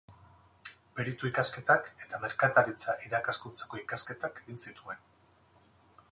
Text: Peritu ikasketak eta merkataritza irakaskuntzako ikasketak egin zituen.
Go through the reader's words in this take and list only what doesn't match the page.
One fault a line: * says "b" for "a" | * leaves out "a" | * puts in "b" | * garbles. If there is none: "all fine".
all fine